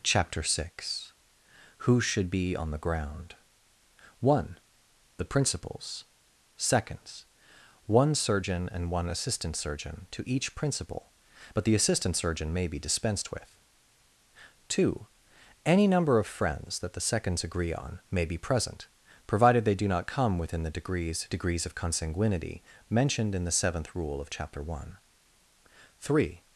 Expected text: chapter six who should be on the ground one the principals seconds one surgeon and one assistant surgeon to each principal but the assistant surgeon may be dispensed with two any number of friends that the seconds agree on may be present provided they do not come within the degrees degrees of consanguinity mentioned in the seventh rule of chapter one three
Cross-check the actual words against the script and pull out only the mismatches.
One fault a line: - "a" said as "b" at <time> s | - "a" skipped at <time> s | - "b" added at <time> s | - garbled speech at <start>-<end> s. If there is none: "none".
none